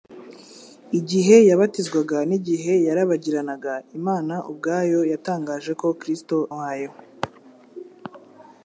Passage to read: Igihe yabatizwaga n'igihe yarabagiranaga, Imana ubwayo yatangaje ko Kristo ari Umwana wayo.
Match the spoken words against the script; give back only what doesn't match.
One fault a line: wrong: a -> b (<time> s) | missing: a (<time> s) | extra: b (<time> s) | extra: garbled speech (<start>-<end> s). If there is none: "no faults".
missing: ari Umwana (6.4 s)